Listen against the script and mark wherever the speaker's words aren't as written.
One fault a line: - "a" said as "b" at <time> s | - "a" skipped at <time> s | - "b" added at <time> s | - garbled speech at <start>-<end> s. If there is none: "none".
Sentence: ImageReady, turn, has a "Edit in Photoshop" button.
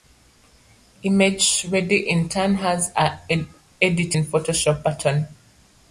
- "in" added at 2.1 s